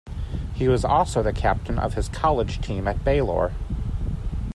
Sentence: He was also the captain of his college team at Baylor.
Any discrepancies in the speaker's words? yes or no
no